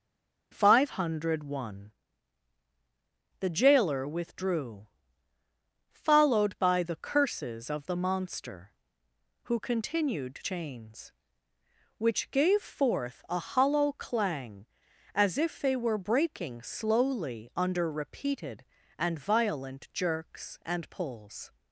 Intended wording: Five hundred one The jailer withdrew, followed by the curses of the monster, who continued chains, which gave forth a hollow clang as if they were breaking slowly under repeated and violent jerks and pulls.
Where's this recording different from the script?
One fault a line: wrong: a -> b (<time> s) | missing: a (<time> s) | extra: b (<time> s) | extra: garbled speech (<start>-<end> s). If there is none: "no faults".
no faults